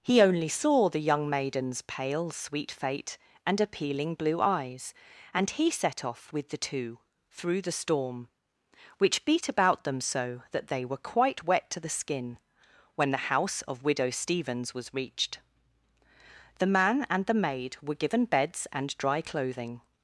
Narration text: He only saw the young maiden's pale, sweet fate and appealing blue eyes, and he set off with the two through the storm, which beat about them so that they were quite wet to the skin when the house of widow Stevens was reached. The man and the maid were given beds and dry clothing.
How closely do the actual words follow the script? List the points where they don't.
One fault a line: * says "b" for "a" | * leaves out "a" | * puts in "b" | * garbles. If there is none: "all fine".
all fine